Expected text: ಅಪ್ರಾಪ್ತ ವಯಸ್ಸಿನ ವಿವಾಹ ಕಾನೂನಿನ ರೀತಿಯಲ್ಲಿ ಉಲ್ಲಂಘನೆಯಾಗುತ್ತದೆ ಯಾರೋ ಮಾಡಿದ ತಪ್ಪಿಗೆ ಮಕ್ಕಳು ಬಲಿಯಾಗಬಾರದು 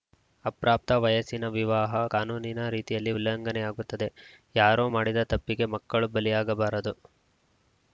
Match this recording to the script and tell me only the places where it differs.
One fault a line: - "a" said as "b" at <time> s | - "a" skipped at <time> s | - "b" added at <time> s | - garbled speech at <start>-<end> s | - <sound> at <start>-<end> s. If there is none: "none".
none